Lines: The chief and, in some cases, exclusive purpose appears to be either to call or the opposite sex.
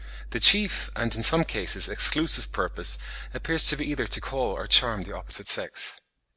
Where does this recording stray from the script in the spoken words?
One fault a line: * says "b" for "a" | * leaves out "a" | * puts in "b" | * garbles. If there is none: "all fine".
* puts in "charm"